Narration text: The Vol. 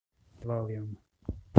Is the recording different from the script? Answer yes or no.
no